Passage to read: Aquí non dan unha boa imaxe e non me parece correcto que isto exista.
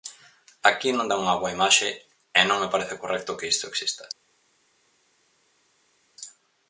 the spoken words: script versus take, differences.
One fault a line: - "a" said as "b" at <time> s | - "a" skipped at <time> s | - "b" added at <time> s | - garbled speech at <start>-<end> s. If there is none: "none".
none